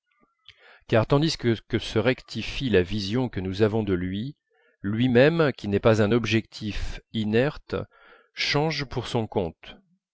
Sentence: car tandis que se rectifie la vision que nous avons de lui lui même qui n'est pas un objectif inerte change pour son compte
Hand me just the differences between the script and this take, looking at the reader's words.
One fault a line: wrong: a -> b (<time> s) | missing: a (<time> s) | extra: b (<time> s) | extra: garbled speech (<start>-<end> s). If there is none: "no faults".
no faults